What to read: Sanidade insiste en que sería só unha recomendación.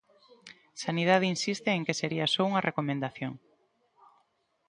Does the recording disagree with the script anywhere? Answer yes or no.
no